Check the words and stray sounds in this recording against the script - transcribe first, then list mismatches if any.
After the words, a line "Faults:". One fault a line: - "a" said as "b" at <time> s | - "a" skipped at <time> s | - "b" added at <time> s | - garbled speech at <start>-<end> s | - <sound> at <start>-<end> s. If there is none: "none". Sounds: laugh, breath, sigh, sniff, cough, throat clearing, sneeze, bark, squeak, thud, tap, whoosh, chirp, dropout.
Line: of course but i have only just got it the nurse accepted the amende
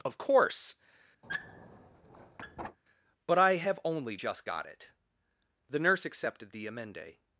of course but i have only just got it the nurse accepted the amende
Faults:
- squeak at 1.2-2.8 s